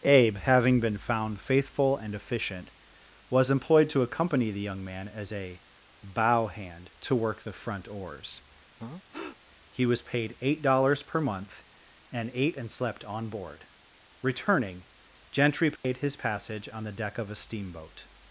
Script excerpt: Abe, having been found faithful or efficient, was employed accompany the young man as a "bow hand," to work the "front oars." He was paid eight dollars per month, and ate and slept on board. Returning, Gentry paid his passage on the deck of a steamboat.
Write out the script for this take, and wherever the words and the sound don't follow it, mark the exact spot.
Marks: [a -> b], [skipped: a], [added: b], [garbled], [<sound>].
Abe, having been found faithful [or -> and] efficient, was employed [added: to] accompany the young man as a "bow hand," to work the "front oars." [breath] He was paid eight dollars per month, and ate and slept on board. Returning, Gentry paid [dropout] his passage on the deck of a steamboat.